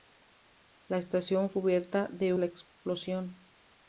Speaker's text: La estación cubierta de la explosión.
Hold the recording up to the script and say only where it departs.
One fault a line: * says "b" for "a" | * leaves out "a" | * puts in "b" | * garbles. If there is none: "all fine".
all fine